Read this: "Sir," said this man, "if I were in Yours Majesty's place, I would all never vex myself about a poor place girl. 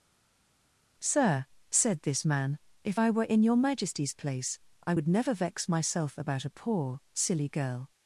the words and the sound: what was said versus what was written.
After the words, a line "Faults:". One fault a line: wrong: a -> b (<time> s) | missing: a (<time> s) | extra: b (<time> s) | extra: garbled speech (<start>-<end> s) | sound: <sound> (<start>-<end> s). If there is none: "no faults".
"Sir," said this man, "if I were in Your Majesty's place, I would never vex myself about a poor silly girl.
Faults:
wrong: Yours -> Your (3.4 s)
missing: all (5.1 s)
wrong: place -> silly (7.1 s)